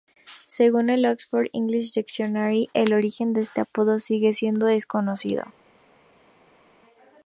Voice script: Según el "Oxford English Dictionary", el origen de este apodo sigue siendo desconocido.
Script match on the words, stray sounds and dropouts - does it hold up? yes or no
yes